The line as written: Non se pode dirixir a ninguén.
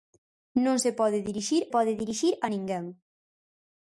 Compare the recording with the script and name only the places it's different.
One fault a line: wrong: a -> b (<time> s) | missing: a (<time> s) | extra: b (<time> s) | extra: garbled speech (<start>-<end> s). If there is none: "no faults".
extra: pode dirixir (1.7 s)